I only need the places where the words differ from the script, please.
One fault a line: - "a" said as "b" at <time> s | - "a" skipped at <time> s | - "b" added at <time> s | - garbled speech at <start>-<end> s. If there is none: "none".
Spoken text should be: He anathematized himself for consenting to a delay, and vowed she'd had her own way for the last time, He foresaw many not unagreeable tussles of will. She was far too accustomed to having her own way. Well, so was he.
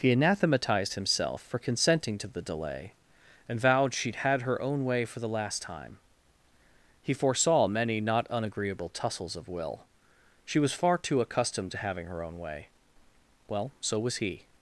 - "a" said as "the" at 2.3 s